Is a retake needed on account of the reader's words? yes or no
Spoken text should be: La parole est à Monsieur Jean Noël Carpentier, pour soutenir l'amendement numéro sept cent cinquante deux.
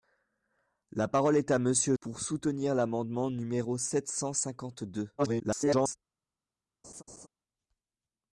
yes